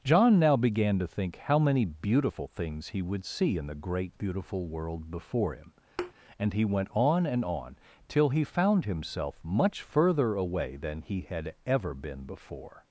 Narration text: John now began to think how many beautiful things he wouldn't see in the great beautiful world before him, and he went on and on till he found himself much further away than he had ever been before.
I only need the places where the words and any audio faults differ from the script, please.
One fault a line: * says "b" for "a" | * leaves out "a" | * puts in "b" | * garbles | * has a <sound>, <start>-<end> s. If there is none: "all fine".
* says "would" for "wouldn't"
* has a thud, 6.0-6.1 s